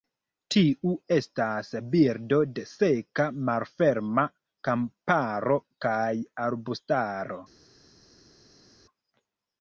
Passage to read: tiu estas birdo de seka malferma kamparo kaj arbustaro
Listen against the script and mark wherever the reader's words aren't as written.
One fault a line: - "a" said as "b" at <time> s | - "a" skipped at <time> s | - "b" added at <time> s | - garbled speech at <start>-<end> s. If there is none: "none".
none